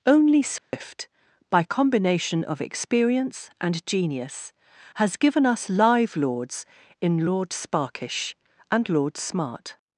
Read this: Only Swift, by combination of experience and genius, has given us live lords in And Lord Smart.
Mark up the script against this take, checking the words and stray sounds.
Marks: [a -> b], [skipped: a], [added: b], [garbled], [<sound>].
Only Swift, [dropout] by combination of experience and genius, has given us live lords in [added: Lord Sparkish] And Lord Smart.